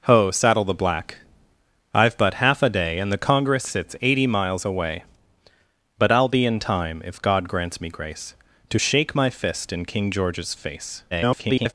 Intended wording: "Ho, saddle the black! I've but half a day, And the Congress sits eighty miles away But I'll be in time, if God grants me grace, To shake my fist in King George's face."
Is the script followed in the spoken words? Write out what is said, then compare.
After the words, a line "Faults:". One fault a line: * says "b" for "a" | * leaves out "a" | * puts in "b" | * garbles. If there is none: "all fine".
"Ho, saddle the black! I've but half a day, And the Congress sits eighty miles away But I'll be in time, if God grants me grace, To shake my fist in King George's face." [garbled]
Faults:
* garbles